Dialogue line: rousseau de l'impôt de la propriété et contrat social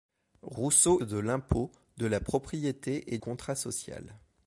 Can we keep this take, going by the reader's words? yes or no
yes